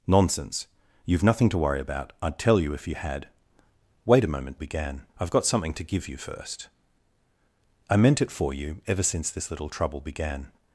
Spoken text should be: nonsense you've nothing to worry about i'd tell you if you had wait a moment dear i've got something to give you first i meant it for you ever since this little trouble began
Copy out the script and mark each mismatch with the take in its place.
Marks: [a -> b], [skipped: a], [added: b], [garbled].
nonsense you've nothing to worry about i'd tell you if you had wait a moment [dear -> began] i've got something to give you first i meant it for you ever since this little trouble began